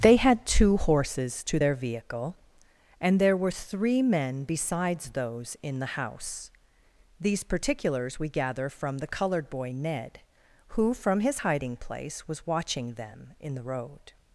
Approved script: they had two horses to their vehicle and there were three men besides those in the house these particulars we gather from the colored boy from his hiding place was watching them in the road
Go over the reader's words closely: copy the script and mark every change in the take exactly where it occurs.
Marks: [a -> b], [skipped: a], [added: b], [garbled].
they had two horses to their vehicle and there were three men besides those in the house these particulars we gather from the colored boy [added: ned who] from his hiding place was watching them in the road